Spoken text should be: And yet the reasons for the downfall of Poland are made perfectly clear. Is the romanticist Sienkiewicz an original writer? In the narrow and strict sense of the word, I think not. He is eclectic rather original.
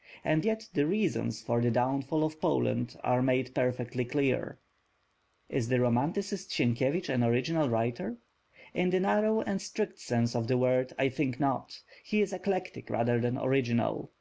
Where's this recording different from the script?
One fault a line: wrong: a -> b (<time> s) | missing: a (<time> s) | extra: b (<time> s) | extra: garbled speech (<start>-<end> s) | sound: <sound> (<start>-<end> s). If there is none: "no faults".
extra: than (13.2 s)